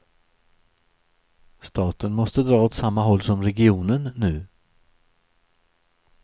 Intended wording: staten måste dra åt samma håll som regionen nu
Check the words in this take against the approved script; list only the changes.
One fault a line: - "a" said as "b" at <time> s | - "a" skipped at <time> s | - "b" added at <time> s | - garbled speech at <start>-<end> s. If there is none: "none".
none